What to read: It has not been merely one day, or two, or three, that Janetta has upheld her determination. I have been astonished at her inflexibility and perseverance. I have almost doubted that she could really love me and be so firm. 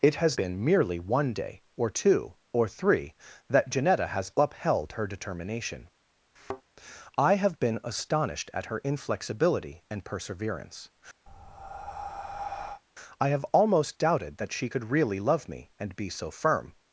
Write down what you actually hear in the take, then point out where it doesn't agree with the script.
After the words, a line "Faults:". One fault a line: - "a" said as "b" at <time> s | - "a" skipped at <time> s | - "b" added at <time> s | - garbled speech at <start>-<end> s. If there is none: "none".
It has been merely one day, or two, or three, that Janetta has upheld her determination. I have been astonished at her inflexibility and perseverance. I have almost doubted that she could really love me and be so firm.
Faults:
- "not" skipped at 0.4 s